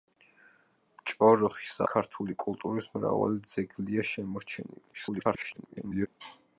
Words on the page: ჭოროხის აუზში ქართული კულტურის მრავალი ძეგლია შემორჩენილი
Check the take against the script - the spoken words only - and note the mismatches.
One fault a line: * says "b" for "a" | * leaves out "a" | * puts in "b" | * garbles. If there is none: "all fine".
* leaves out "აუზში"
* garbles